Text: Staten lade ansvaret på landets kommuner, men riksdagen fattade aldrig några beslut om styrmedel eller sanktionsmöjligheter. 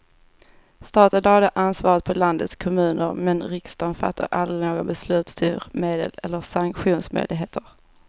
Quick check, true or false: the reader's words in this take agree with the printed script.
false